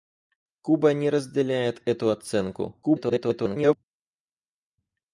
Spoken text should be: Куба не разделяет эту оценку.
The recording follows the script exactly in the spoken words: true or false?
false